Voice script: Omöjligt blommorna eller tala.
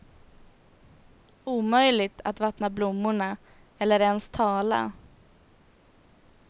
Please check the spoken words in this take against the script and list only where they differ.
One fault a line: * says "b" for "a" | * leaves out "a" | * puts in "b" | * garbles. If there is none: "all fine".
* puts in "att vattna"
* puts in "ens"